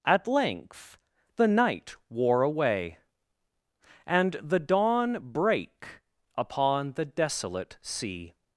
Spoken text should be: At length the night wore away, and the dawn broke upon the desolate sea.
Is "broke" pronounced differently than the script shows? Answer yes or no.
yes